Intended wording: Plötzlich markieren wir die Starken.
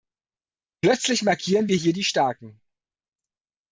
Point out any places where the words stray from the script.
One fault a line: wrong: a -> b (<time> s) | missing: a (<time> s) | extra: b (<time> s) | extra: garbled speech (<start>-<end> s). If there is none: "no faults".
extra: hier (1.7 s)